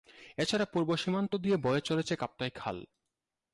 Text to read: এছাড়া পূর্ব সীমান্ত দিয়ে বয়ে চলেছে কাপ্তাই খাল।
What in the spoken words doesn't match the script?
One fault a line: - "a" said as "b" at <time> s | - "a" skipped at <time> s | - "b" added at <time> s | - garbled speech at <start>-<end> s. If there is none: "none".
none